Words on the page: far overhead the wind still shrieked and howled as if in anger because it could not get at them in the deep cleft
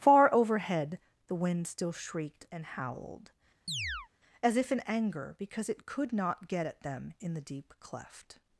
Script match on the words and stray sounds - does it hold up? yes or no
no